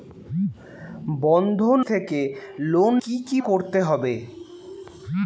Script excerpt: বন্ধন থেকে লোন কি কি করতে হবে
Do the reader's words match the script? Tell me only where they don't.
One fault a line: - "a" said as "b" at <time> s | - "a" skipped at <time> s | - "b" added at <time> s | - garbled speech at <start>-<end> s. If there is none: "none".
none